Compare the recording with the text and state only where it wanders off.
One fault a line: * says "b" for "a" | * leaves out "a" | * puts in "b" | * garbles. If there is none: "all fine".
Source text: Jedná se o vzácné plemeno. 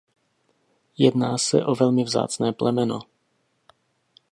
* puts in "velmi"